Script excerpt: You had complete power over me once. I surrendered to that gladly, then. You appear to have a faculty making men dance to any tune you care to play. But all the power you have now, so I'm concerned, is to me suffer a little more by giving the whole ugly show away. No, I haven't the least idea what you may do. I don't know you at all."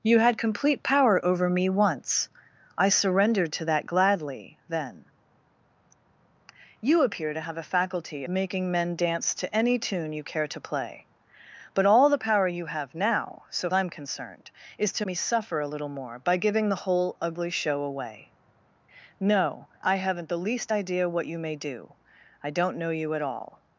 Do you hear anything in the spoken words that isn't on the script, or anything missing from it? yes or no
no